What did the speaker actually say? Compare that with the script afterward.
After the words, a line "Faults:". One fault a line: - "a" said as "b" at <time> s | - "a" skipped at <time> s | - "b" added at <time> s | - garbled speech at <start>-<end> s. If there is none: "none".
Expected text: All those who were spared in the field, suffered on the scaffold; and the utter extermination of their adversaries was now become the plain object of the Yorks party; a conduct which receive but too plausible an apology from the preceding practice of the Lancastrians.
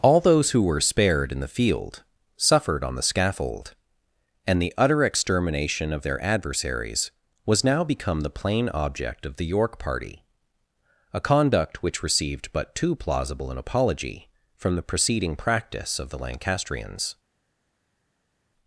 All those who were spared in the field, suffered on the scaffold; and the utter extermination of their adversaries was now become the plain object of the York party; a conduct which received but too plausible an apology from the preceding practice of the Lancastrians.
Faults:
- "Yorks" said as "York" at 9.5 s
- "receive" said as "received" at 12.0 s